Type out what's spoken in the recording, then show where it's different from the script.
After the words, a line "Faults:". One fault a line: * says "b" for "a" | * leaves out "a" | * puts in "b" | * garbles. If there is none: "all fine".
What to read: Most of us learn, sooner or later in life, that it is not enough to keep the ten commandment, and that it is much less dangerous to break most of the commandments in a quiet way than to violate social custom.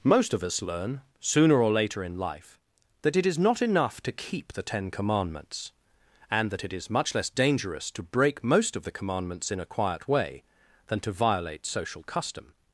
Most of us learn, sooner or later in life, that it is not enough to keep the ten commandments, and that it is much less dangerous to break most of the commandments in a quiet way than to violate social custom.
Faults:
* says "commandments" for "commandment"